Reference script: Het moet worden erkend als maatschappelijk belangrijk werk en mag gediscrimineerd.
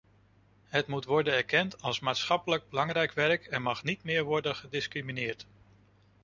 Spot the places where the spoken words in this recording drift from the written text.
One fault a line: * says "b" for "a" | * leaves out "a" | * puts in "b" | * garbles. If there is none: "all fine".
* puts in "niet meer worden"